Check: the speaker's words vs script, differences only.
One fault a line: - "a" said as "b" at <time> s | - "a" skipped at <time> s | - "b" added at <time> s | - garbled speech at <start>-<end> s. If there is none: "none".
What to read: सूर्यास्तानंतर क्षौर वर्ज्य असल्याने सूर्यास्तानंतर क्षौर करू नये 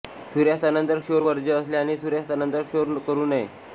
none